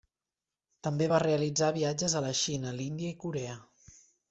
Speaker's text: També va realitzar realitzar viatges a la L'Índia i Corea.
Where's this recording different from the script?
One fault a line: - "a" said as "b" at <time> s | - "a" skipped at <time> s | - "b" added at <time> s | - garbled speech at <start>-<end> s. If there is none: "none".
- "realitzar" skipped at 1.7 s
- "Xina" added at 2.5 s